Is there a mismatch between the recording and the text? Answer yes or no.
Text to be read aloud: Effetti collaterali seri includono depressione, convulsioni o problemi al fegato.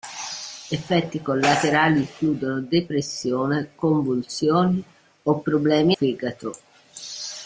yes